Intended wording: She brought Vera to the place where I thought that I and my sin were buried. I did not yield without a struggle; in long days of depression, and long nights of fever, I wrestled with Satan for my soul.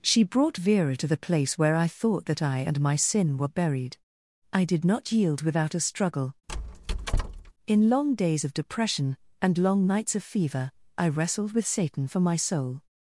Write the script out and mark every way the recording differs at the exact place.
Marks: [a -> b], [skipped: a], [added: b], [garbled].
She brought Vera to the place where I thought that I and my sin were buried. I did not yield without a struggle; in long days of depression, and long nights of fever, I wrestled with Satan for my soul.